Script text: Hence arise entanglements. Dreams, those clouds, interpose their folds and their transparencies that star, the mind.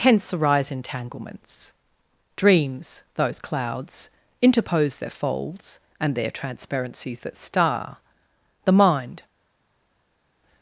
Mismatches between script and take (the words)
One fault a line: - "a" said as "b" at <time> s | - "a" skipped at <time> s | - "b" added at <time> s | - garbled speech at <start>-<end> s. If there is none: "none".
none